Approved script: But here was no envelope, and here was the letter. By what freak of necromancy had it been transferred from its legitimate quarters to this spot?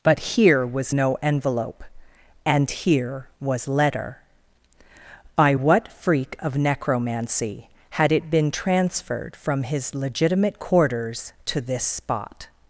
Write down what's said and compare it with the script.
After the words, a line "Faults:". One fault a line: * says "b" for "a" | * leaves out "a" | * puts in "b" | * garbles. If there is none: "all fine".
But here was no envelope, and here was letter. By what freak of necromancy had it been transferred from his legitimate quarters to this spot?
Faults:
* leaves out "the"
* says "his" for "its"